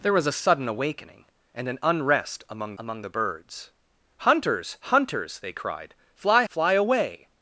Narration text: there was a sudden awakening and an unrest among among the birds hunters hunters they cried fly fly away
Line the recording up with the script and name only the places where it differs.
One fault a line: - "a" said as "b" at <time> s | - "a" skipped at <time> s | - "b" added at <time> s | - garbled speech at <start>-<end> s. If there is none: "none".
none